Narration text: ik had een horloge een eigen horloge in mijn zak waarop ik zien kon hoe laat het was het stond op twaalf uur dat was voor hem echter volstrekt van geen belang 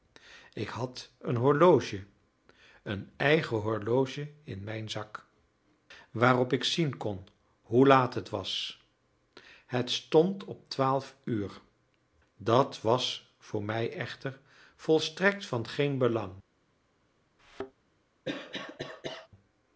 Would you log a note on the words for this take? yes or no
yes